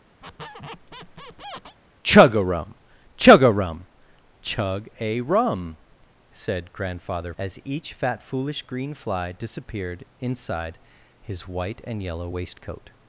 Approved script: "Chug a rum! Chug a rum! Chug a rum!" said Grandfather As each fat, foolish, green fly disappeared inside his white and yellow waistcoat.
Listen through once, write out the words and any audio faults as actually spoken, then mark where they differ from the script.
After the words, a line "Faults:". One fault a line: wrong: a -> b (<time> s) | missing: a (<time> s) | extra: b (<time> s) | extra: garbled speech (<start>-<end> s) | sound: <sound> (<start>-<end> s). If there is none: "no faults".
"Chug a rum! Chug a rum! Chug a rum!" said Grandfather As each fat, foolish, green fly disappeared inside his white and yellow waistcoat.
Faults:
sound: squeak (0.2-1.8 s)